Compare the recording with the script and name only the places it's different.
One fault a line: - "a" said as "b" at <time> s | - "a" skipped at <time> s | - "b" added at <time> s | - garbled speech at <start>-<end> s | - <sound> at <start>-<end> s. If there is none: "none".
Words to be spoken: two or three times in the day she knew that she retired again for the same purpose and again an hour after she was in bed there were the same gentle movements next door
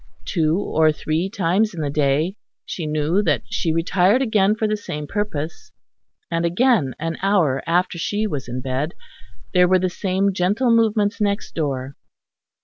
none